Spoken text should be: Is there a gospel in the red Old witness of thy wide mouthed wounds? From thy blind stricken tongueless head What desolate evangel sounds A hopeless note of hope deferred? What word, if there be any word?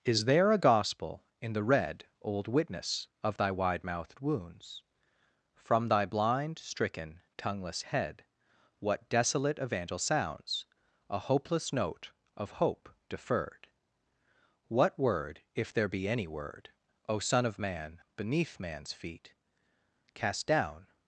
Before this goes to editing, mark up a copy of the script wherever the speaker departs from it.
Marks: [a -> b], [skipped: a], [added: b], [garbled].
Is there a gospel in the red Old witness of thy wide mouthed wounds? From thy blind stricken tongueless head What desolate evangel sounds A hopeless note of hope deferred? What word, if there be any word? [added: O son of man beneath man's feet Cast down]